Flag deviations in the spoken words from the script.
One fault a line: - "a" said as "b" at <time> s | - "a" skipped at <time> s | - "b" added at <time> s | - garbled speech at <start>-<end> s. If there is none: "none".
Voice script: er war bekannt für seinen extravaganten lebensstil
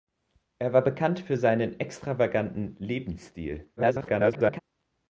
- garbled speech at 3.8-4.6 s